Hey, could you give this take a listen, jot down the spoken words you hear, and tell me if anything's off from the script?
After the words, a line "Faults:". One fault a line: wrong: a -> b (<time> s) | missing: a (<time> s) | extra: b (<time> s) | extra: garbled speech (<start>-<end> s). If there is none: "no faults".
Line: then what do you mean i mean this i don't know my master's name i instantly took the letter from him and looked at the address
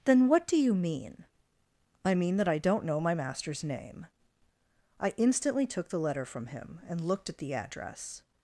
then what do you mean i mean that i don't know my master's name i instantly took the letter from him and looked at the address
Faults:
wrong: this -> that (2.4 s)